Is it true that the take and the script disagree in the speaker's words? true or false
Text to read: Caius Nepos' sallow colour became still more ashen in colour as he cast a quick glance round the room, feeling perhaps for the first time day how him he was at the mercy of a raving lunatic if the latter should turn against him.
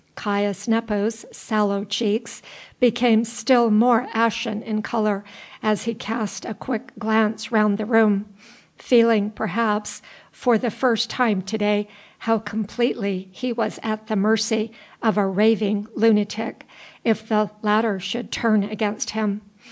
true